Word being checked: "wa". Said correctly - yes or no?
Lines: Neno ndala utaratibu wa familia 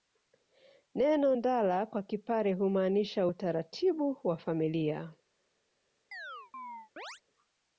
yes